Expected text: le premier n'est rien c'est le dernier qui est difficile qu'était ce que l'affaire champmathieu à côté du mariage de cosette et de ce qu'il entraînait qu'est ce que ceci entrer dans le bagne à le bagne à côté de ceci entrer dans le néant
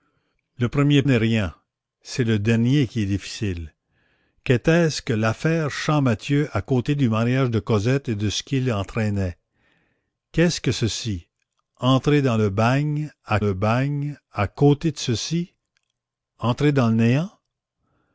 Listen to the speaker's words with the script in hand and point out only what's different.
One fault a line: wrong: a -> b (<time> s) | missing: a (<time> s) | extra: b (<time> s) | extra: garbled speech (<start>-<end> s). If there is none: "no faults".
no faults